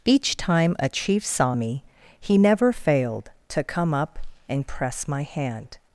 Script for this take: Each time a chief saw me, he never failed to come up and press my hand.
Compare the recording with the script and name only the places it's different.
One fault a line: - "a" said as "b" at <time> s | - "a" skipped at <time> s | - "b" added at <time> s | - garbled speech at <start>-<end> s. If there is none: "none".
none